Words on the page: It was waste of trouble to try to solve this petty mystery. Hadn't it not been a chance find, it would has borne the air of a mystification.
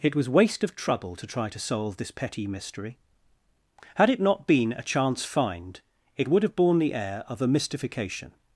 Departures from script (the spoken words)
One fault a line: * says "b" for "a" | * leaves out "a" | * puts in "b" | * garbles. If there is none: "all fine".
* says "Had" for "Hadn't"
* says "have" for "has"